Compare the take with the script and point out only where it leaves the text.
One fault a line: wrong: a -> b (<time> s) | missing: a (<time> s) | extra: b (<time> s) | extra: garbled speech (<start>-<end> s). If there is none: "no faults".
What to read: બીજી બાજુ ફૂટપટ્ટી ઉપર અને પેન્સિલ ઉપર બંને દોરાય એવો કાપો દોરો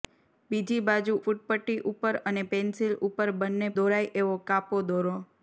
no faults